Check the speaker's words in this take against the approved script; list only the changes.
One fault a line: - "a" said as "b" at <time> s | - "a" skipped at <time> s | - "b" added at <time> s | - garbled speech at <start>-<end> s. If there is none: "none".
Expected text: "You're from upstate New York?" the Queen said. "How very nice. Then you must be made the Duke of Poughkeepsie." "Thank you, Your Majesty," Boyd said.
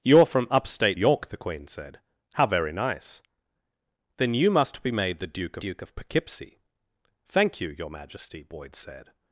- "New" skipped at 1.0 s
- "Duke" added at 5.6 s